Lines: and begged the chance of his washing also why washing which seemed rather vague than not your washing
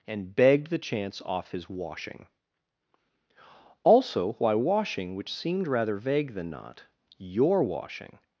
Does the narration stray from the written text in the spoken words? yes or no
yes